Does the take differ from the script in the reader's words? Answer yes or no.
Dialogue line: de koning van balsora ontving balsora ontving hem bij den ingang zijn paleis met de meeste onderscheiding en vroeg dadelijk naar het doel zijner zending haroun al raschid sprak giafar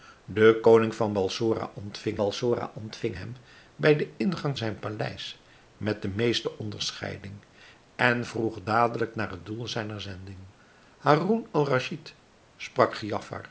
no